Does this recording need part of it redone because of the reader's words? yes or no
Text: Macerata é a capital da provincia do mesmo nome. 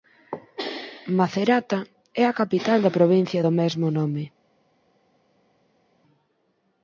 no